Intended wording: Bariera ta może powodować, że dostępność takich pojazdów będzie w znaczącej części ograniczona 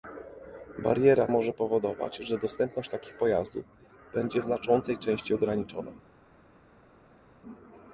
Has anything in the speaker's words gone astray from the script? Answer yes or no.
yes